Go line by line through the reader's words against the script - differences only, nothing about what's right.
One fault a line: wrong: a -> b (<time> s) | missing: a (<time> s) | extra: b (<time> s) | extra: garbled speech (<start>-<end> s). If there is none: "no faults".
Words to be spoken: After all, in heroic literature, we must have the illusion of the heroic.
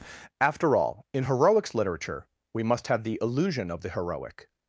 wrong: heroic -> heroics (1.2 s)